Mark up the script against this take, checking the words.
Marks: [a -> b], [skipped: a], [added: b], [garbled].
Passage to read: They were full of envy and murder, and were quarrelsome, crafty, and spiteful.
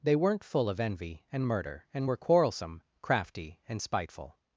They [were -> weren't] full of envy and murder, and were quarrelsome, crafty, and spiteful.